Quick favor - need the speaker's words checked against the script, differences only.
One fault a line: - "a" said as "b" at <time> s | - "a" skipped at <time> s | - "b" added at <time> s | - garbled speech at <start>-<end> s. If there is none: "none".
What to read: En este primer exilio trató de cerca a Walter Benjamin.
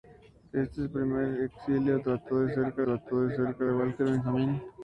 - "trató de cerca" added at 2.8 s